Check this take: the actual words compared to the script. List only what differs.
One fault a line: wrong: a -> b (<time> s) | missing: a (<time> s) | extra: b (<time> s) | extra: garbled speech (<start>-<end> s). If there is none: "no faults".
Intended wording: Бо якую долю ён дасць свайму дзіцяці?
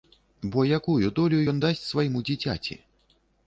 no faults